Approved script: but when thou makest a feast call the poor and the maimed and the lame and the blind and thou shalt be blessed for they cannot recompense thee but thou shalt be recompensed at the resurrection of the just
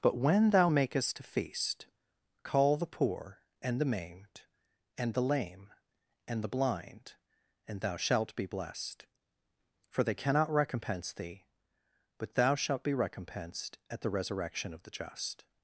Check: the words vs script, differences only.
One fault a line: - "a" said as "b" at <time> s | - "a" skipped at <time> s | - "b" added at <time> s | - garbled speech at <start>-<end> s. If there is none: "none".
none